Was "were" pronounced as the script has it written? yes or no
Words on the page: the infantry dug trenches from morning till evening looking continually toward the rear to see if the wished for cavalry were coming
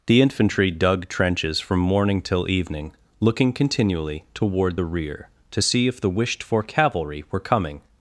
yes